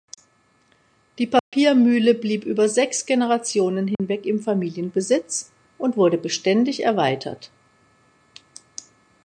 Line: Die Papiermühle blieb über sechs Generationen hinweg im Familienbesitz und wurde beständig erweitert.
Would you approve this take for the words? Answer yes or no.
yes